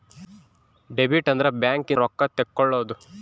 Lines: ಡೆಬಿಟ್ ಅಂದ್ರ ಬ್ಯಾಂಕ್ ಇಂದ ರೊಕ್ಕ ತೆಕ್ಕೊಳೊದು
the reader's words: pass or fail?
fail